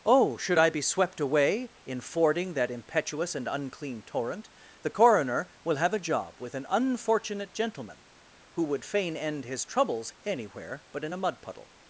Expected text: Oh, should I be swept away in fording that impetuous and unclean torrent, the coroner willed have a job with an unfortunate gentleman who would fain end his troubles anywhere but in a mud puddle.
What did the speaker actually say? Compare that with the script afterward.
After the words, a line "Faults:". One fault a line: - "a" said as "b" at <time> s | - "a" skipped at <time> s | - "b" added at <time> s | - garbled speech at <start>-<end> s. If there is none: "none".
Oh, should I be swept away in fording that impetuous and unclean torrent, the coroner will have a job with an unfortunate gentleman who would fain end his troubles anywhere but in a mud puddle.
Faults:
- "willed" said as "will" at 5.6 s